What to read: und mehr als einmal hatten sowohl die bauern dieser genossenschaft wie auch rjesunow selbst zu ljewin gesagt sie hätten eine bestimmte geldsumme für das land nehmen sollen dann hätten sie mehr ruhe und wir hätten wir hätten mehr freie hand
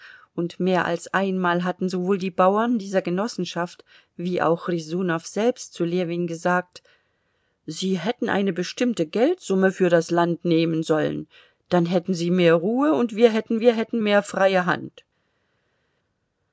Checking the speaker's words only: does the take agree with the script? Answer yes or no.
yes